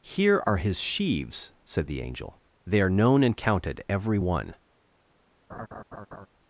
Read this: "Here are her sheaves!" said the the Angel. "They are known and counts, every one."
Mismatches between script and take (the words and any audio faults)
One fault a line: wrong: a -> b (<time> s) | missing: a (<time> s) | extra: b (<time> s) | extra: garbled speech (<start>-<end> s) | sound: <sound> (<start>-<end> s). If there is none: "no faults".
wrong: her -> his (0.6 s)
missing: the (2.0 s)
wrong: counts -> counted (3.3 s)
sound: laugh (5.5-6.3 s)